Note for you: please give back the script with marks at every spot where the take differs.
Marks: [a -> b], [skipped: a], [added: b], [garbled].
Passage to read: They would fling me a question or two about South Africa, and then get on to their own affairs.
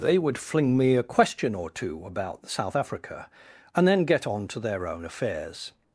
They would fling me a question or two about South Africa, and then get on to their own affairs.